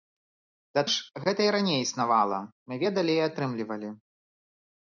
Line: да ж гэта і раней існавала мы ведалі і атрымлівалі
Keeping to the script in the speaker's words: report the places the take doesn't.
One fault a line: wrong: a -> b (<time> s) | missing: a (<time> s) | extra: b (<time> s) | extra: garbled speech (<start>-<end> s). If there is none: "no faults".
no faults